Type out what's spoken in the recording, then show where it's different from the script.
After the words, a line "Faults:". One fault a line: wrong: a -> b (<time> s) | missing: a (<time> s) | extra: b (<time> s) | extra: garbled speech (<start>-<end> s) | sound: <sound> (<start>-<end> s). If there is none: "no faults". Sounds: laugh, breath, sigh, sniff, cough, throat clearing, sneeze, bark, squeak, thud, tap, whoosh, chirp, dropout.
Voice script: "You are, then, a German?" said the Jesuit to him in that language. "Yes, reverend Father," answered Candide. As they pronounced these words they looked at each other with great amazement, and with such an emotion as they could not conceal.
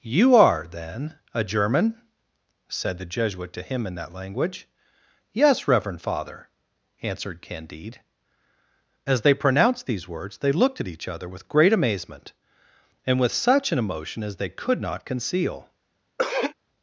"You are, then, a German?" said the Jesuit to him in that language. "Yes, reverend Father," answered Candide. As they pronounced these words they looked at each other with great amazement, and with such an emotion as they could not conceal.
Faults:
sound: throat clearing (16.2-16.5 s)